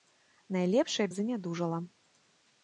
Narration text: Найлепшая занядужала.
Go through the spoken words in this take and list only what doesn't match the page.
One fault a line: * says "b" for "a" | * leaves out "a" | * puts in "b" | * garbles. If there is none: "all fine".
all fine